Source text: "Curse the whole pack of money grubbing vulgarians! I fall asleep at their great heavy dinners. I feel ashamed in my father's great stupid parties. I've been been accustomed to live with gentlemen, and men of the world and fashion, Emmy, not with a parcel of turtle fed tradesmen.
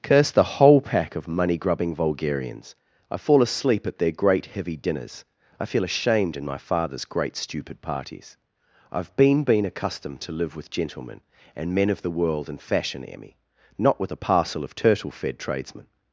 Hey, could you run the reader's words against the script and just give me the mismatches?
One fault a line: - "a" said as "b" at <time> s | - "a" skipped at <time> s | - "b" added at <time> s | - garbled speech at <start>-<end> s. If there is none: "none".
none